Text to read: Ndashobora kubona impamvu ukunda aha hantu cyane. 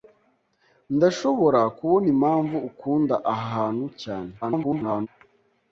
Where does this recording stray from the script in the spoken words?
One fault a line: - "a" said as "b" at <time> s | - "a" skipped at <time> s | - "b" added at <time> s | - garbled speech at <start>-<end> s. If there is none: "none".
- garbled speech at 4.4-5.1 s